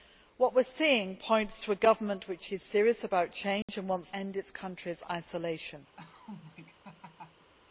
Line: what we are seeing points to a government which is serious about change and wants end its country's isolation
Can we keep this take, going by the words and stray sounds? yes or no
no